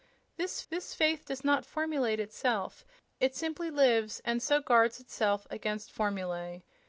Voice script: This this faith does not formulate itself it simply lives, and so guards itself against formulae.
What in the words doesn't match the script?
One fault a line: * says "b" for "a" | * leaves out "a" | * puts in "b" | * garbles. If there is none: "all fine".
all fine